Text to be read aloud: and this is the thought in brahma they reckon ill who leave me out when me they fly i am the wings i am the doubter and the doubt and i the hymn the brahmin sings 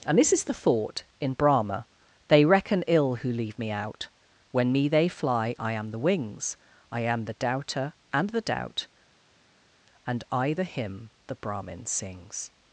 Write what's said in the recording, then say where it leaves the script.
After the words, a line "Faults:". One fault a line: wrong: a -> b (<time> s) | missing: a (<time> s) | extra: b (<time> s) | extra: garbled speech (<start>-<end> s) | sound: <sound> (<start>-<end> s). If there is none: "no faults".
and this is the thought in brahma they reckon ill who leave me out when me they fly i am the wings i am the doubter and the doubt and i the hymn the brahmin sings
Faults:
no faults